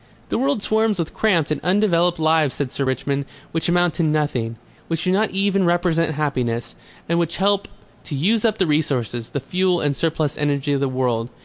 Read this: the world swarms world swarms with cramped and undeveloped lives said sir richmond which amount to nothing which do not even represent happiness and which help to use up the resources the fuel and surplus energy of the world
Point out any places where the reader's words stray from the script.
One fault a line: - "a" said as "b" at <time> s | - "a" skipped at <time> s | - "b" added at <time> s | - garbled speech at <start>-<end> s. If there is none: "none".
- "world swarms" skipped at 1.0 s